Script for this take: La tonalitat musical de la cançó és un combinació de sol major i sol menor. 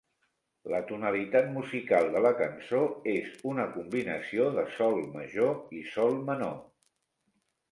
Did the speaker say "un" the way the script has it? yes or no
no